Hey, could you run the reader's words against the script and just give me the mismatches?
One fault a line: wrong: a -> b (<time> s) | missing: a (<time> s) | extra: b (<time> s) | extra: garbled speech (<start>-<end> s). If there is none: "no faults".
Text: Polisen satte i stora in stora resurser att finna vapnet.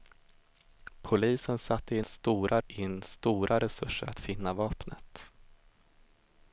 no faults